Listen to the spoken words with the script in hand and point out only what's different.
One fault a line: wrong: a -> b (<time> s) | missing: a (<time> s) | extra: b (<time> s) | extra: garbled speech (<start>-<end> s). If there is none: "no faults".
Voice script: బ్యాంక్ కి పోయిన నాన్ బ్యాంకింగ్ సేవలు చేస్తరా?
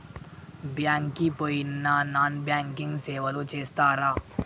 no faults